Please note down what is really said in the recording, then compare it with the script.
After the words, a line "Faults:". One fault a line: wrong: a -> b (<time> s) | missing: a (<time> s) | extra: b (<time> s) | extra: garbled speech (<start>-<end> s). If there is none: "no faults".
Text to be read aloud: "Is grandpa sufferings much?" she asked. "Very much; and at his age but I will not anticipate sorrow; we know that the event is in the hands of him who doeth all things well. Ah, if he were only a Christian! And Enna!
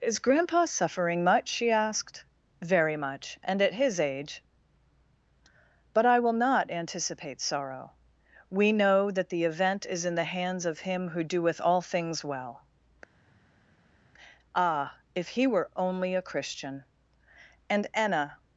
"Is grandpa suffering much?" she asked. "Very much; and at his age but I will not anticipate sorrow; we know that the event is in the hands of him who doeth all things well. Ah, if he were only a Christian! And Enna!
Faults:
wrong: sufferings -> suffering (0.7 s)